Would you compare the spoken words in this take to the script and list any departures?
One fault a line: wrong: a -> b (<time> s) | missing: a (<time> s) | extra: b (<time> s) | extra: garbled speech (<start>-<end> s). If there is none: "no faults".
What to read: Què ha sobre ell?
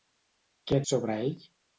no faults